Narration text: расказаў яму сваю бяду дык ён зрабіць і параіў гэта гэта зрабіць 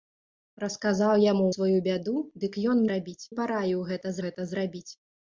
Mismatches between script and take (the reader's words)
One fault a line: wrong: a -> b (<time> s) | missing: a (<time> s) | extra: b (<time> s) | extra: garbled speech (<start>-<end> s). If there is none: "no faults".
no faults